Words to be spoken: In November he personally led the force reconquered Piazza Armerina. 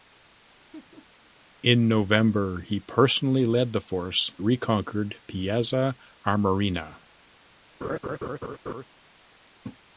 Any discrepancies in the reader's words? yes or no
no